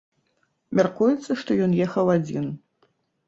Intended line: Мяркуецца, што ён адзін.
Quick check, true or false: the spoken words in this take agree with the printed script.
false